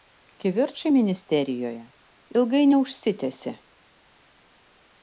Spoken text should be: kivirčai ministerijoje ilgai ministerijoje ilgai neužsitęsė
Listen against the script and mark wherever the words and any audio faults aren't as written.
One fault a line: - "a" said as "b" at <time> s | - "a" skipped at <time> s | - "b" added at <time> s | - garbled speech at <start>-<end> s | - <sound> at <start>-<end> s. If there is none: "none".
- "ministerijoje ilgai" skipped at 2.6 s